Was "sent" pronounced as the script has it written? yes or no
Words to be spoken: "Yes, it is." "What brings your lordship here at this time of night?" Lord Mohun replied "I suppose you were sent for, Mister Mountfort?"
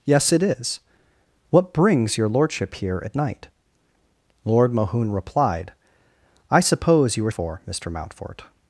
no